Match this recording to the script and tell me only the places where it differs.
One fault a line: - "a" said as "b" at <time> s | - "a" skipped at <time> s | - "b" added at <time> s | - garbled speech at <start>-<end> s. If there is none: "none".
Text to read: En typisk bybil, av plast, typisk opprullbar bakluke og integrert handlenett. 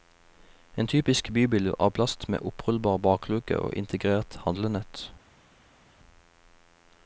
- "typisk" said as "med" at 2.3 s